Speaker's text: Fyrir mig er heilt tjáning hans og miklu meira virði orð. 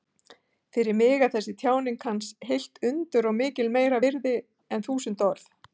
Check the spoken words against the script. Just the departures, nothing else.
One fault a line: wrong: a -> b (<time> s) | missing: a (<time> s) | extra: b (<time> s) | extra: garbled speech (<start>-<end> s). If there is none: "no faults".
wrong: heilt -> þessi (1.4 s)
extra: heilt undur (2.5 s)
extra: en þúsund (4.8 s)